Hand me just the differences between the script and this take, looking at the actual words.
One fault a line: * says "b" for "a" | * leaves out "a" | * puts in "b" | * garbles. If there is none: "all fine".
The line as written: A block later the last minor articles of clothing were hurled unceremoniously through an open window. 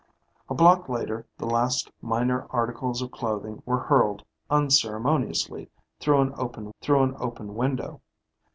* puts in "through an open"